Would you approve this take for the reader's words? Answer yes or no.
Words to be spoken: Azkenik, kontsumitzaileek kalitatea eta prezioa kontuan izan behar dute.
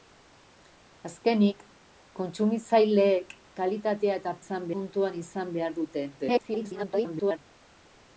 no